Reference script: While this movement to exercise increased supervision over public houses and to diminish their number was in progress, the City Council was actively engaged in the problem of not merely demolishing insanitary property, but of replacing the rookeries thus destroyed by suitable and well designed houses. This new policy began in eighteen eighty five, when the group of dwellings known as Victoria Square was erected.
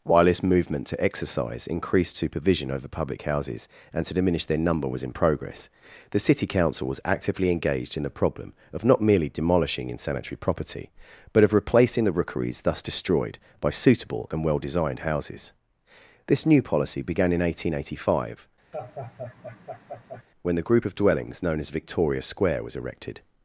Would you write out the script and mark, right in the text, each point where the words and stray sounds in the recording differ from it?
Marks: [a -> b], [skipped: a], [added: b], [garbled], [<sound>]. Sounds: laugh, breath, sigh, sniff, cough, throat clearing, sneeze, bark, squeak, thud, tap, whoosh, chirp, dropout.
While this movement to exercise increased supervision over public houses and to diminish their number was in progress, the City Council was actively engaged in the problem of not merely demolishing insanitary property, but of replacing the rookeries thus destroyed by suitable and well designed houses. This new policy began in eighteen eighty five, [laugh] when the group of dwellings known as Victoria Square was erected.